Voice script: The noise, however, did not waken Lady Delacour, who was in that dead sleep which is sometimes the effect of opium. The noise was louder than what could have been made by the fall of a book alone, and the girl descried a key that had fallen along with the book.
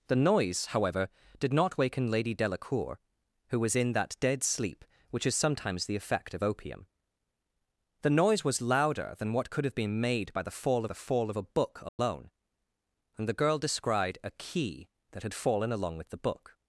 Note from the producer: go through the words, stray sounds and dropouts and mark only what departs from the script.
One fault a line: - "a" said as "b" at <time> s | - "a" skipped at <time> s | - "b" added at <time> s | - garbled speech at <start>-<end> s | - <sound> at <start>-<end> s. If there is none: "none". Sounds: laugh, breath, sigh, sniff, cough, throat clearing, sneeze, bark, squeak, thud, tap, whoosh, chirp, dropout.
- "the fall" added at 10.8 s
- dropout at 11.9-12.0 s